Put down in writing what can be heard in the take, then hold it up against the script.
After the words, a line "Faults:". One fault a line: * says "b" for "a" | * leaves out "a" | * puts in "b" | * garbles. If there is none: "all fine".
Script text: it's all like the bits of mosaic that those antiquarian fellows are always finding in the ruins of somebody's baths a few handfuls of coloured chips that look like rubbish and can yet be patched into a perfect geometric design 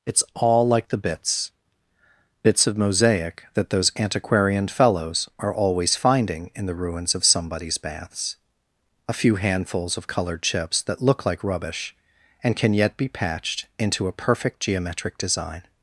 it's all like the bits bits of mosaic that those antiquarian fellows are always finding in the ruins of somebody's baths a few handfuls of coloured chips that look like rubbish and can yet be patched into a perfect geometric design
Faults:
* puts in "bits"